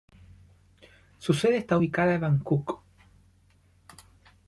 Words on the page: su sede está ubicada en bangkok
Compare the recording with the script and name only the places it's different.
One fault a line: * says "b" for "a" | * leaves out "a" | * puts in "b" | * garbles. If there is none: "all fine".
all fine